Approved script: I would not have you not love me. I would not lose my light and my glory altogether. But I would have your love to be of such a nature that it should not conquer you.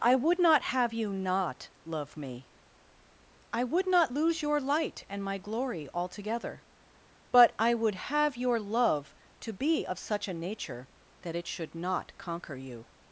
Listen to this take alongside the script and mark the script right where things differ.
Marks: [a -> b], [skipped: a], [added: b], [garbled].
I would not have you not love me. I would not lose [my -> your] light and my glory altogether. But I would have your love to be of such a nature that it should not conquer you.